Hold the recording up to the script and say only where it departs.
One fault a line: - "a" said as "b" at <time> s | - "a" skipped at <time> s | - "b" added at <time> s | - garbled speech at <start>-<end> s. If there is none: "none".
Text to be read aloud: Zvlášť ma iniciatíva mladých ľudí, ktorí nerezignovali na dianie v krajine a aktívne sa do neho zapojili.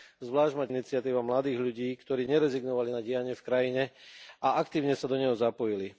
none